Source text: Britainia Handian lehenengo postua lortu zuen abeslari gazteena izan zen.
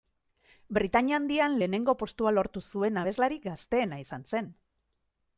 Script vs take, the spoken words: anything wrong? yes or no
no